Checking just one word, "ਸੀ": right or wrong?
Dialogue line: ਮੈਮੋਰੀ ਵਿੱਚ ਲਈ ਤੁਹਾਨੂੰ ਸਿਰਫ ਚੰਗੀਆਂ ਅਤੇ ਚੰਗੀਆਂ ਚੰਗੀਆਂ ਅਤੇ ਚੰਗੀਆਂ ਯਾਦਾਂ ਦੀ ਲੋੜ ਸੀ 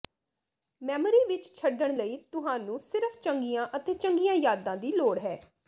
wrong